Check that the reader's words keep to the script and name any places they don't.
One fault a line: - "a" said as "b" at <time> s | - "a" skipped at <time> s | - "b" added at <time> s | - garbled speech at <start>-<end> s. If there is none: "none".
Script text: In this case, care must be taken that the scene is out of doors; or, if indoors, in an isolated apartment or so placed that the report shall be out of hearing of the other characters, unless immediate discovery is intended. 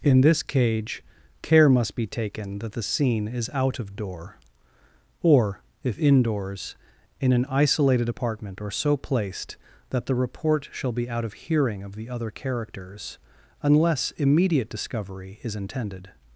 - "case" said as "cage" at 0.4 s
- "doors" said as "door" at 4.0 s